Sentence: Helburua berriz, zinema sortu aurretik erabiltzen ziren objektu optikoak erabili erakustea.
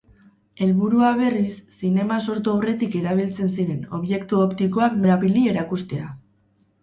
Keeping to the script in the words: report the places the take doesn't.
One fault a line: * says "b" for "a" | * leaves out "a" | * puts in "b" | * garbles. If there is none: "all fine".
all fine